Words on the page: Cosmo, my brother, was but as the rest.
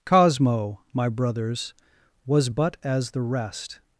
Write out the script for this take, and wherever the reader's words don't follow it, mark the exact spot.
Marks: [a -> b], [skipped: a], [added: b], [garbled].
Cosmo, my [brother, -> brothers] was but as the rest.